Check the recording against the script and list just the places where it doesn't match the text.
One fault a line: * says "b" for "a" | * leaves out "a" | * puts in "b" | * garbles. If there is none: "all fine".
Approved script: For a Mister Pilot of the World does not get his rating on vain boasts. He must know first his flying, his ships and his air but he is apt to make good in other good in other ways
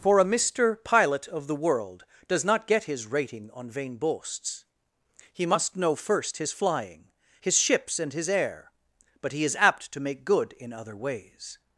* leaves out "good in other"